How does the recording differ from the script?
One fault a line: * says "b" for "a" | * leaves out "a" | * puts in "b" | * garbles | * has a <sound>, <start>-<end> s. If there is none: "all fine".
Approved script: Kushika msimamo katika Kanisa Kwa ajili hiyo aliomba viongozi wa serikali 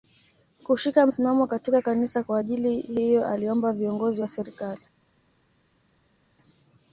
all fine